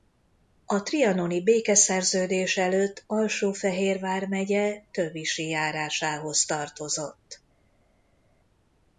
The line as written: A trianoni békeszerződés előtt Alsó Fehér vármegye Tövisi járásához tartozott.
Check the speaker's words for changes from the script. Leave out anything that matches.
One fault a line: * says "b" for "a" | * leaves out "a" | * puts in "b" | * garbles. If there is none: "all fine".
all fine